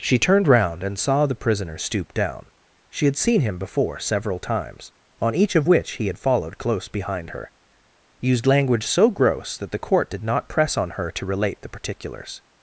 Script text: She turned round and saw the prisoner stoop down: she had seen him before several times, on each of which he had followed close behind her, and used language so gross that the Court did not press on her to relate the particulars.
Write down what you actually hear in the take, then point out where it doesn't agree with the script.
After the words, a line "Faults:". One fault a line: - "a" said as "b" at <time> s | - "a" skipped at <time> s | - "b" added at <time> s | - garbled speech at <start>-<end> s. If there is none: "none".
She turned round and saw the prisoner stoop down: she had seen him before several times, on each of which he had followed close behind her, used language so gross that the Court did not press on her to relate the particulars.
Faults:
- "and" skipped at 7.5 s